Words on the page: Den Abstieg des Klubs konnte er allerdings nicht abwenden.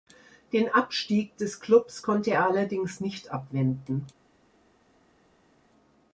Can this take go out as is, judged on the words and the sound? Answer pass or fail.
pass